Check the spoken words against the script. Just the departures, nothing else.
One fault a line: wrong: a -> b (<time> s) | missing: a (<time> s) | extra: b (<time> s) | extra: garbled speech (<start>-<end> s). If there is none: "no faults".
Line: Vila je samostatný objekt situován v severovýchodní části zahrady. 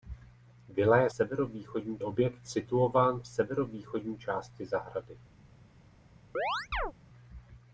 wrong: samostatný -> severovýchodní (1.1 s)